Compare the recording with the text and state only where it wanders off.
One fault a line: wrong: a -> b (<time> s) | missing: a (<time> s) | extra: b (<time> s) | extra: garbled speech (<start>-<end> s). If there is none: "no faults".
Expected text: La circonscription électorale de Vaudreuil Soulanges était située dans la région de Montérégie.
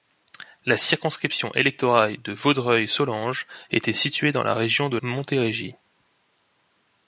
no faults